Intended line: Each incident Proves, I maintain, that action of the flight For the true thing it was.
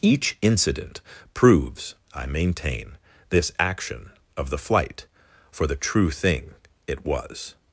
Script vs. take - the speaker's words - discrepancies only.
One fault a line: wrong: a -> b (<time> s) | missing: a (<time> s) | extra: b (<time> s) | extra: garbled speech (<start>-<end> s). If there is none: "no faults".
wrong: that -> this (3.3 s)